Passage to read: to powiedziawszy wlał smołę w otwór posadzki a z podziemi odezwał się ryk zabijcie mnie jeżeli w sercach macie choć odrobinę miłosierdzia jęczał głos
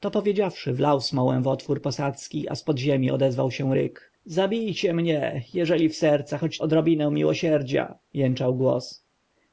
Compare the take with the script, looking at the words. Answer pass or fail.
fail